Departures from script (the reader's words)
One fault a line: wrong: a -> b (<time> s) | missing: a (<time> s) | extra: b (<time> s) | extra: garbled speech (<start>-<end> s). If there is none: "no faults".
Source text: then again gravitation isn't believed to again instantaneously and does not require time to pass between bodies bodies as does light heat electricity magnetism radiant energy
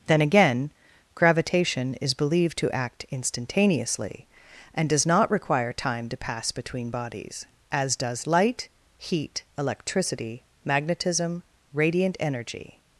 wrong: isn't -> is (1.9 s)
wrong: again -> act (2.7 s)
missing: bodies (7.5 s)